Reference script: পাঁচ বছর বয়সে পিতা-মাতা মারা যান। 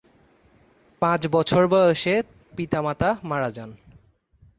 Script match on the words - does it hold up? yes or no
yes